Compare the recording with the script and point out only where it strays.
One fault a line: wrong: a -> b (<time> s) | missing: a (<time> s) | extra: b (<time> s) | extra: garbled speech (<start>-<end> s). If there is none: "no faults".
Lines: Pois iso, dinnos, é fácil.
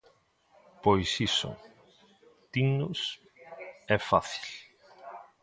no faults